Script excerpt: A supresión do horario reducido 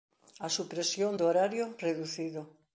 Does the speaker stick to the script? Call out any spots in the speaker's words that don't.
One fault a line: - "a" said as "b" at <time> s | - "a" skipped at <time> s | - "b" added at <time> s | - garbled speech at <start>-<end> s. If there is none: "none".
none